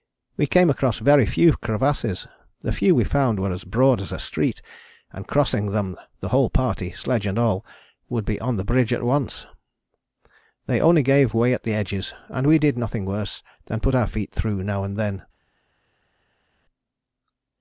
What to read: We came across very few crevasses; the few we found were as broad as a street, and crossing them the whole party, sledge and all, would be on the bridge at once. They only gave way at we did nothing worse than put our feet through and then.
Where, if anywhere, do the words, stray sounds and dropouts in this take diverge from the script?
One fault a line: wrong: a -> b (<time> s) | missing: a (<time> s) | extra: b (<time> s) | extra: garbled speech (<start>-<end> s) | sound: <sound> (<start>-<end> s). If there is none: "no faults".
extra: the edges and (11.6 s)
extra: now (14.6 s)